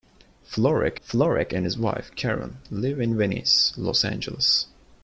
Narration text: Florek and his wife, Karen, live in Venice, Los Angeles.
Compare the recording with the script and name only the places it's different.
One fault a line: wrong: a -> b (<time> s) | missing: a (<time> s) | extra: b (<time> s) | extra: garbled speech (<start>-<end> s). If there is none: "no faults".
extra: florek (1.0 s)